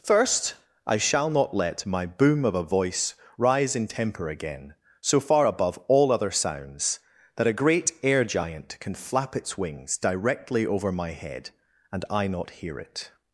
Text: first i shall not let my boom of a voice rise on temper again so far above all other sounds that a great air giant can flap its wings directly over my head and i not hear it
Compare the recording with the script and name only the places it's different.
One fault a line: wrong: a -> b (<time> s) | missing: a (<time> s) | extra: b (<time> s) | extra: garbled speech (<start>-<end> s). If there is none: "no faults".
wrong: on -> in (3.8 s)